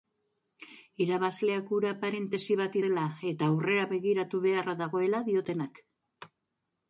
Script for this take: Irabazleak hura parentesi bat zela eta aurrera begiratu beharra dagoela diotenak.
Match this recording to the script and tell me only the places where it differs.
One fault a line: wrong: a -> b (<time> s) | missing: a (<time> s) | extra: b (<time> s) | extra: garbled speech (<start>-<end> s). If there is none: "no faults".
no faults